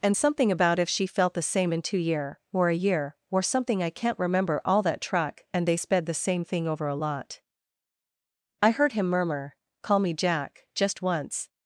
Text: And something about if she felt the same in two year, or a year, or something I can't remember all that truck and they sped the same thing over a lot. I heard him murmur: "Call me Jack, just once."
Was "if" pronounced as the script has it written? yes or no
yes